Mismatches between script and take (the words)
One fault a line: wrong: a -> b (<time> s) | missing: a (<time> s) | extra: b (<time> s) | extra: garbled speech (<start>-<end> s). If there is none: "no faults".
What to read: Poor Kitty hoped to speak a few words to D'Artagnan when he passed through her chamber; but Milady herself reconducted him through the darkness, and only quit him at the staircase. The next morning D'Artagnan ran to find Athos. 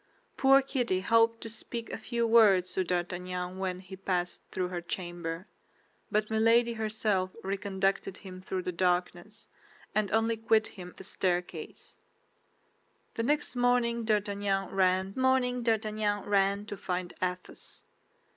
missing: at (10.9 s)
extra: morning D'Artagnan ran (15.2 s)